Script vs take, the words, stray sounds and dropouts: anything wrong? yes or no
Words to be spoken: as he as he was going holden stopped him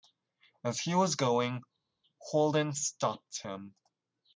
yes